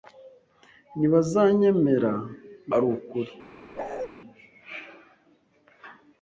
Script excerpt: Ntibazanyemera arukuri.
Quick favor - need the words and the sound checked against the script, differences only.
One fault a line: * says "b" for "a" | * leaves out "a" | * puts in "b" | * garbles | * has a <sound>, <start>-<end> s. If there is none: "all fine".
* has a bark, 3.7-4.1 s